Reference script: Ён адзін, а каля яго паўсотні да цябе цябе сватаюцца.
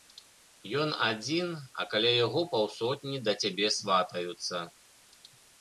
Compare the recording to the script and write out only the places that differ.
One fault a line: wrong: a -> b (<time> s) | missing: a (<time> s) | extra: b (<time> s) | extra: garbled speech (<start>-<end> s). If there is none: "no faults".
missing: цябе (3.7 s)